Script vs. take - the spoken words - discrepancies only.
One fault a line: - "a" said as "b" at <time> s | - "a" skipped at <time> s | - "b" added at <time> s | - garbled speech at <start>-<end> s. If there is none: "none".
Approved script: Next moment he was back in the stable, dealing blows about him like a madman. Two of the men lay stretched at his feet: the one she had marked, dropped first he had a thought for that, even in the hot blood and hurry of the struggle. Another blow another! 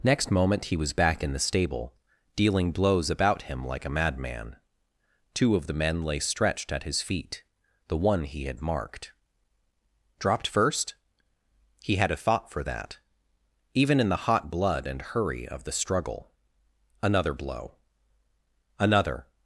- "she" said as "he" at 8.2 s